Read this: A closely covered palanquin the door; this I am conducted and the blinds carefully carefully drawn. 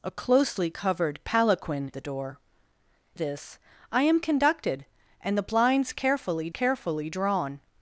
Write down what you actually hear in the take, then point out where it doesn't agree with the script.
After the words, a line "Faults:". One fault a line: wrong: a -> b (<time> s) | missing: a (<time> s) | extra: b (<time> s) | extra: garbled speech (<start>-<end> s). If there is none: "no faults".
A closely covered palanquin the door; this I am conducted and the blinds carefully carefully drawn.
Faults:
no faults